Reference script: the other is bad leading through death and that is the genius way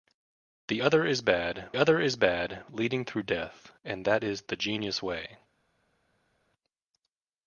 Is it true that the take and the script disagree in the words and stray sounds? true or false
true